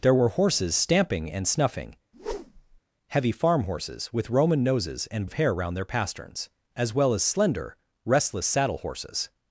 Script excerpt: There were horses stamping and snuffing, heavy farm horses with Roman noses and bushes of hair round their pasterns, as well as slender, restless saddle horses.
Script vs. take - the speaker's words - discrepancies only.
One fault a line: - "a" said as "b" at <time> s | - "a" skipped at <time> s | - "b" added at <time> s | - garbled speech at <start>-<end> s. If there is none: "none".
- "bushes" skipped at 5.3 s